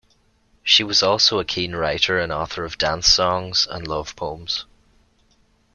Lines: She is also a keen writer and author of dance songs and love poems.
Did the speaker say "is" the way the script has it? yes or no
no